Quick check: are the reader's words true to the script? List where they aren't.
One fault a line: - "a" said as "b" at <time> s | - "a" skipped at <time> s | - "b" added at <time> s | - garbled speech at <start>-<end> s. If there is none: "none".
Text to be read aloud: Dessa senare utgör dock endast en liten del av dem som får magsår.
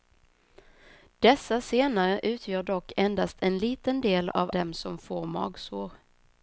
none